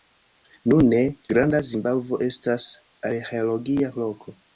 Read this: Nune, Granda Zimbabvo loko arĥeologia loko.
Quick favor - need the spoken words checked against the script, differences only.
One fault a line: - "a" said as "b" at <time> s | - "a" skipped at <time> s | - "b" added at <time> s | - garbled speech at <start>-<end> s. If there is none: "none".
- "loko" said as "estas" at 2.3 s